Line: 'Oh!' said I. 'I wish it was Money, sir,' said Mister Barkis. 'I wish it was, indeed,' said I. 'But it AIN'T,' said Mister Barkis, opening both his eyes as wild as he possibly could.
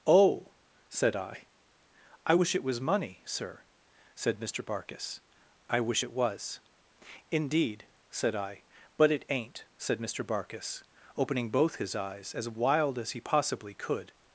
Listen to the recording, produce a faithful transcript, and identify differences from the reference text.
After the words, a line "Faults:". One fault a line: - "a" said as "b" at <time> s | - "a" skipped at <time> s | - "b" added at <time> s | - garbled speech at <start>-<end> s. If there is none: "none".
'Oh!' said I. 'I wish it was Money, sir,' said Mister Barkis. 'I wish it was, indeed,' said I. 'But it AIN'T,' said Mister Barkis, opening both his eyes as wild as he possibly could.
Faults:
none